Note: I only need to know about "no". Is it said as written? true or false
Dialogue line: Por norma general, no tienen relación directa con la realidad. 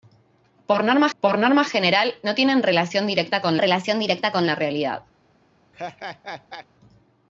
true